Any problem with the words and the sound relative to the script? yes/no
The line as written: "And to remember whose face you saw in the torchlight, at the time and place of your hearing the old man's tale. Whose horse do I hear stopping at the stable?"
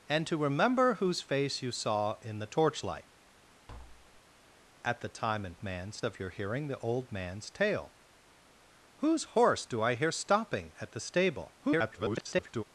yes